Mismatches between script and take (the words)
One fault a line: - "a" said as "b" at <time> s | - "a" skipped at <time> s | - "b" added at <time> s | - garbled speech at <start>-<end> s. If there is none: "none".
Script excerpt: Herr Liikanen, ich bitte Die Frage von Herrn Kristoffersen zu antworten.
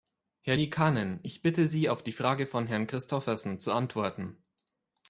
- "Sie auf" added at 1.7 s